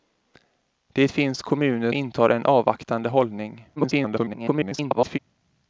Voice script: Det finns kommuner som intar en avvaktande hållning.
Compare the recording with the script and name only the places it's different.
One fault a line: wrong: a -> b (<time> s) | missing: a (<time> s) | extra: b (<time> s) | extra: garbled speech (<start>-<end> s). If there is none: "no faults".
missing: som (1.9 s)
extra: garbled speech (3.8-5.2 s)